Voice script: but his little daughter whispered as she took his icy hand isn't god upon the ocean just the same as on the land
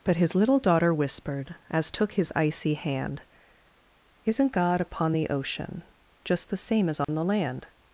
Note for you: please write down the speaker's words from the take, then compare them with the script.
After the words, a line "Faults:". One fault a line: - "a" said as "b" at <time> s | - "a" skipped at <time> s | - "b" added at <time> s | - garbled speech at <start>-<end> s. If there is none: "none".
but his little daughter whispered as took his icy hand isn't god upon the ocean just the same as on the land
Faults:
- "she" skipped at 1.9 s